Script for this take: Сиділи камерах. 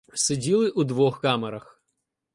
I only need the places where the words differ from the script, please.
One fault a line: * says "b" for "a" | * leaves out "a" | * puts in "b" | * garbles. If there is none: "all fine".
* puts in "у двох"